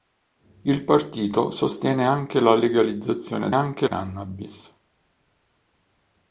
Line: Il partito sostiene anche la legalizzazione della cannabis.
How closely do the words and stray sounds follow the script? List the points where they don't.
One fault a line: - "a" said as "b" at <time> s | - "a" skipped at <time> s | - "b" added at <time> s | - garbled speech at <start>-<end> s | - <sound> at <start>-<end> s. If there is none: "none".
- "della" said as "anche" at 3.5 s